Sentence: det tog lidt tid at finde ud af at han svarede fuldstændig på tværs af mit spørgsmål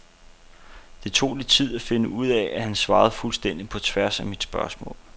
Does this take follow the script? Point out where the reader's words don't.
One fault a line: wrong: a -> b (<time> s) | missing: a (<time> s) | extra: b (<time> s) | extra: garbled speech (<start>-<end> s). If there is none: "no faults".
no faults